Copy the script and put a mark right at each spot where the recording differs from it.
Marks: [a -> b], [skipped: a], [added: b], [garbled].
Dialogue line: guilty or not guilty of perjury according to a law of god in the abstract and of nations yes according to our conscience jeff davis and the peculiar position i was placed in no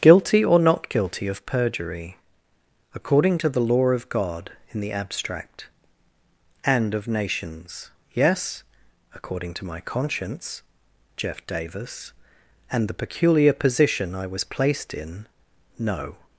guilty or not guilty of perjury according to [a -> the] law of god in the abstract and of nations yes according to [our -> my] conscience jeff davis and the peculiar position i was placed in no